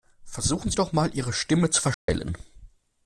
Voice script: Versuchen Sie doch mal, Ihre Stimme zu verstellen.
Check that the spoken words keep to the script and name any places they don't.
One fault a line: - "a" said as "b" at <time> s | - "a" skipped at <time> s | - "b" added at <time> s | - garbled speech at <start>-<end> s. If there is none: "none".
none